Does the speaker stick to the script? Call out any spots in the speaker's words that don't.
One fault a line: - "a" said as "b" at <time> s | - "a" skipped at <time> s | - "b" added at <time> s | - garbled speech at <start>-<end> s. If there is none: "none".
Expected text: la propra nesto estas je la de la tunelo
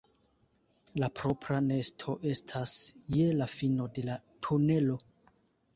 - "fino" added at 3.6 s